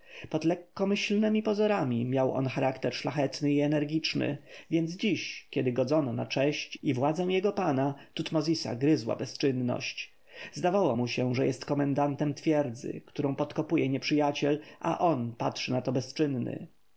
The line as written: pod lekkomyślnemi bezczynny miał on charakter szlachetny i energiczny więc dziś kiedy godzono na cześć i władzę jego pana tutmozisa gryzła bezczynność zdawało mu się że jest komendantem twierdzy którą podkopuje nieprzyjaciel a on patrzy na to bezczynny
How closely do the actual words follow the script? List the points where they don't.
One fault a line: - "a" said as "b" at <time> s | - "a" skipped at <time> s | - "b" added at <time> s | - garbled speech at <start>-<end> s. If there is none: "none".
- "bezczynny" said as "pozorami" at 1.4 s